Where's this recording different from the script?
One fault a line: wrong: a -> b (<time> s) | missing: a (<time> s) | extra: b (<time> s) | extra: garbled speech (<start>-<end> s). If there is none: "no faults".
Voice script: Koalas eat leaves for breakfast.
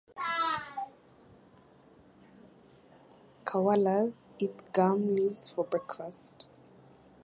extra: gum (4.7 s)